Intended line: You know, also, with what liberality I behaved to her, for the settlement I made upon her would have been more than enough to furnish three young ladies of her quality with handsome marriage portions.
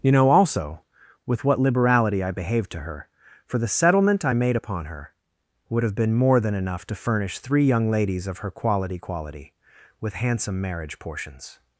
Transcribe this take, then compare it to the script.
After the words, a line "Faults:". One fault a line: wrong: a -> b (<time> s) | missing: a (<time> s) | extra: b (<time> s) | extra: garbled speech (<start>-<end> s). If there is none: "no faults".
You know, also, with what liberality I behaved to her, for the settlement I made upon her would have been more than enough to furnish three young ladies of her quality quality with handsome marriage portions.
Faults:
extra: quality (9.0 s)